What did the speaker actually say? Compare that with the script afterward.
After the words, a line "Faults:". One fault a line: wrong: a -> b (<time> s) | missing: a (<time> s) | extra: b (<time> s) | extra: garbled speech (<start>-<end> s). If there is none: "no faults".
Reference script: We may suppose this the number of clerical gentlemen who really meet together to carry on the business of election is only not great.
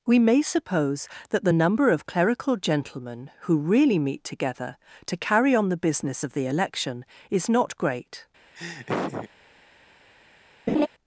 We may suppose that the number of clerical gentlemen who really meet together to carry on the business of the election is not great.
Faults:
wrong: this -> that (1.3 s)
extra: the (6.3 s)
missing: only (7.5 s)